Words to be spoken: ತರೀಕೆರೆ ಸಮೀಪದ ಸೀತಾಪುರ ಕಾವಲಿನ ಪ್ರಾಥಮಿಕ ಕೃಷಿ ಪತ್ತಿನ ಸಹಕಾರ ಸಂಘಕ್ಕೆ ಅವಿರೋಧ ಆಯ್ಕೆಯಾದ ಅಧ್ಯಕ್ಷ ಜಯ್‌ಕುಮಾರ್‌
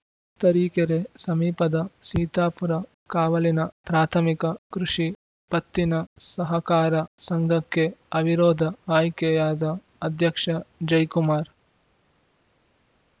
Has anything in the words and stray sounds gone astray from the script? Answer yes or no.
no